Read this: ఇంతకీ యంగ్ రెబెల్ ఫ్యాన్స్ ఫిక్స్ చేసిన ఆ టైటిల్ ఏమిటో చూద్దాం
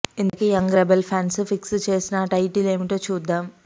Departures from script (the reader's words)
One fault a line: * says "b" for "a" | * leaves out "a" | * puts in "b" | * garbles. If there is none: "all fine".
all fine